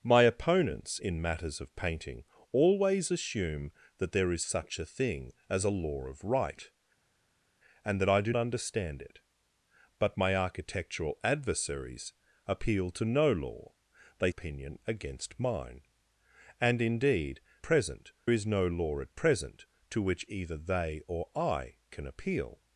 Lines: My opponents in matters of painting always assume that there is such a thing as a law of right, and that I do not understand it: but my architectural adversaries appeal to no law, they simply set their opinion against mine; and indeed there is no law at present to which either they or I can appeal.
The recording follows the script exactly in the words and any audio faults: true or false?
false